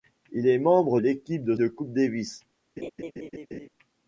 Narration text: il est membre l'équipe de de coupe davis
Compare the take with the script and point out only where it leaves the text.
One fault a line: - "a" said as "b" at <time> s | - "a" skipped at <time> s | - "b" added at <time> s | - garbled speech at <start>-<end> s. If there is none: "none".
none